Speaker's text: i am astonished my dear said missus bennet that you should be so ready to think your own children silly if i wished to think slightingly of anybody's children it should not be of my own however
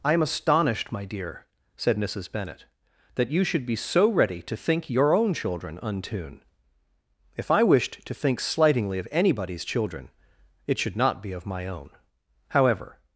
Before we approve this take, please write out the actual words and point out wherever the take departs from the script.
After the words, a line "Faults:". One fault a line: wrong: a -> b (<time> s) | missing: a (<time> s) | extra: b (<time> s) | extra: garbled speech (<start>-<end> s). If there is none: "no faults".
i am astonished my dear said missus bennet that you should be so ready to think your own children untune if i wished to think slightingly of anybody's children it should not be of my own however
Faults:
wrong: silly -> untune (5.8 s)